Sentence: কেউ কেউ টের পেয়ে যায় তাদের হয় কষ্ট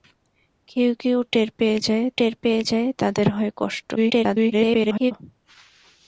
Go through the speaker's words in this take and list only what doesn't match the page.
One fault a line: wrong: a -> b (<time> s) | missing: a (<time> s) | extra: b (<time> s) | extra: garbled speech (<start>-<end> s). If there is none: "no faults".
extra: টের পেয়ে যায় (2.2 s)
extra: garbled speech (4.0-5.1 s)